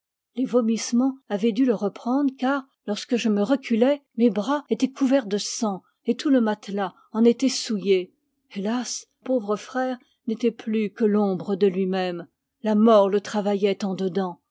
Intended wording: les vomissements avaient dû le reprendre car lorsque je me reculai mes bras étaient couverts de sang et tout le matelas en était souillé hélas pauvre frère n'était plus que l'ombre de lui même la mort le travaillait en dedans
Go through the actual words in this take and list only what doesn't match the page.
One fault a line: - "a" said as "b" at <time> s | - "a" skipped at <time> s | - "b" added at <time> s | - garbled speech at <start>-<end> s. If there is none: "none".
none